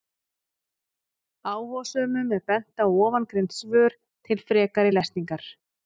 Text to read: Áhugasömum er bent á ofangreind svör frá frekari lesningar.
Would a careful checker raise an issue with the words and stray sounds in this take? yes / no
yes